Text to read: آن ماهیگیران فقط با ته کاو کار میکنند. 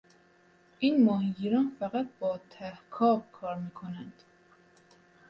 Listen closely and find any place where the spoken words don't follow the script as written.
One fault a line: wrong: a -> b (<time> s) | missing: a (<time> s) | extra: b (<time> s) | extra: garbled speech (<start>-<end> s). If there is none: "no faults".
wrong: آن -> این (0.8 s)